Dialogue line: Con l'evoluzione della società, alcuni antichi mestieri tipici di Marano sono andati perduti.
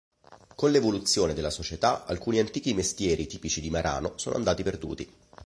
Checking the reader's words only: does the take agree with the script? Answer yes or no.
yes